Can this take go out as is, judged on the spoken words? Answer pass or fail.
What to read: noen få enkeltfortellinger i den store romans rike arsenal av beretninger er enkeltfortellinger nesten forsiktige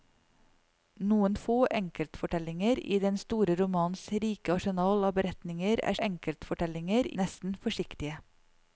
pass